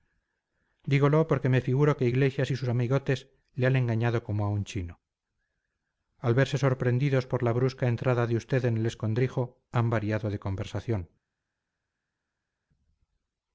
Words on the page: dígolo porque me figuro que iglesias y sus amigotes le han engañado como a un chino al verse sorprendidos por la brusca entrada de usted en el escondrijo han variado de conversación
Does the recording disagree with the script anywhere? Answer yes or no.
no